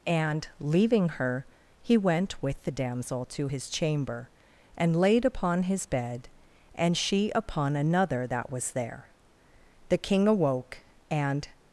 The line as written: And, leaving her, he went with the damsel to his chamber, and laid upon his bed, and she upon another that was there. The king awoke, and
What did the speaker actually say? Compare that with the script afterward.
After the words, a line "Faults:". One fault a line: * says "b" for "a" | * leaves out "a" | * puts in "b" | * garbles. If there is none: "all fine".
And, leaving her, he went with the damsel to his chamber, and laid upon his bed, and she upon another that was there. The king awoke, and
Faults:
all fine